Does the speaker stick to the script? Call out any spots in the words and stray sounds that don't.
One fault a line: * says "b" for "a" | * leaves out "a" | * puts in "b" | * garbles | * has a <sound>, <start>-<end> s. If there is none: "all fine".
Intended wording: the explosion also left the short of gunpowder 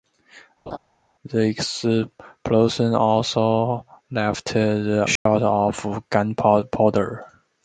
* has a laugh, 0.7-0.8 s
* has a dropout, 5.2-5.3 s